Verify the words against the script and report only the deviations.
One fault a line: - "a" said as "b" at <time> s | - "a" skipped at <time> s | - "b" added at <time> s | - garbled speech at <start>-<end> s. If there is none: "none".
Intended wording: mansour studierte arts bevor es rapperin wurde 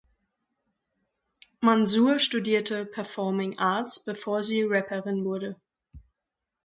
- "performing" added at 2.9 s
- "es" said as "sie" at 4.4 s